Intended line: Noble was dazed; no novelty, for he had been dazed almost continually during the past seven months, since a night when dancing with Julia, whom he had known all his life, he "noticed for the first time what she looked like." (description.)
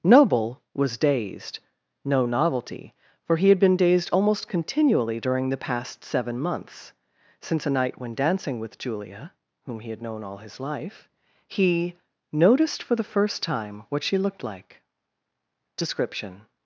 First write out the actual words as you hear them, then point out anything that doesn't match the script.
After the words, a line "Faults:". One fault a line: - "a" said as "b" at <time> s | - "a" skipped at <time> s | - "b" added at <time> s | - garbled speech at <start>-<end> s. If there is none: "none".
Noble was dazed; no novelty, for he had been dazed almost continually during the past seven months, since a night when dancing with Julia, whom he had known all his life, he "noticed for the first time what she looked like." (description.)
Faults:
none